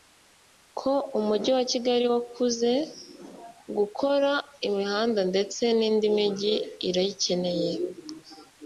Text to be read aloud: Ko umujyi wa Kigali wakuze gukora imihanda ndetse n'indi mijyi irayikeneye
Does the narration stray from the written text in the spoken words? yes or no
no